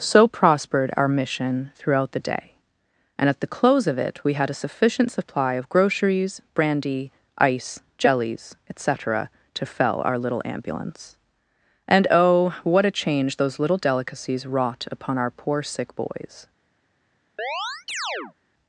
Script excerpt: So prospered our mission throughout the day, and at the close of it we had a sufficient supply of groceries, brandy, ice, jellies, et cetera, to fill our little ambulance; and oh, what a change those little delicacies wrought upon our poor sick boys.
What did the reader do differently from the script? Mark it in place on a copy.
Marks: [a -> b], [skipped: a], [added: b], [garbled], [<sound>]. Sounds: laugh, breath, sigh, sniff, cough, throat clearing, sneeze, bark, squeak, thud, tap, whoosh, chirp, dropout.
So prospered our mission throughout the day, and at the close of it we had a sufficient supply of groceries, brandy, ice, jellies, et cetera, to [fill -> fell] our little ambulance; and oh, what a change those little delicacies wrought upon our poor sick boys. [chirp]